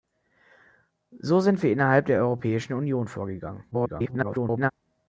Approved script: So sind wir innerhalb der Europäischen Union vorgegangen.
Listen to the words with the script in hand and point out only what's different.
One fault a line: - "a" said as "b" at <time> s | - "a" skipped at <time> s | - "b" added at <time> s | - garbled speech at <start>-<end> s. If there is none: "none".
- garbled speech at 3.7-4.7 s